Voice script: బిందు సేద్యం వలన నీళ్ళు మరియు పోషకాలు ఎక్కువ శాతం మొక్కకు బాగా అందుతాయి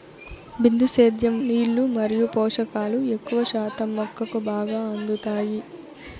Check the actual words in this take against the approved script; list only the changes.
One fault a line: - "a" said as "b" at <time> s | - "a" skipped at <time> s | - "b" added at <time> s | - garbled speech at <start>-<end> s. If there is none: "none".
- "వలన" skipped at 1.4 s